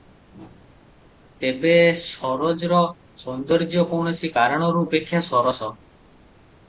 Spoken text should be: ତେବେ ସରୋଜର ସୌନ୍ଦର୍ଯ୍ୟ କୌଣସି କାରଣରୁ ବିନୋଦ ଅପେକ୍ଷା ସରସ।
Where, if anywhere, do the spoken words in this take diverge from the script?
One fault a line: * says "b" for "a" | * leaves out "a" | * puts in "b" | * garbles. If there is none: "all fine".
* leaves out "ବିନୋଦ"